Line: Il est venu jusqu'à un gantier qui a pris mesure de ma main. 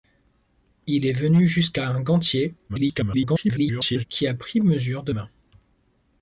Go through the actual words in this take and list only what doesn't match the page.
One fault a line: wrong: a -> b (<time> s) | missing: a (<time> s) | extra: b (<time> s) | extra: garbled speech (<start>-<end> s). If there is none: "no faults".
extra: garbled speech (2.7-4.0 s)
missing: ma (5.1 s)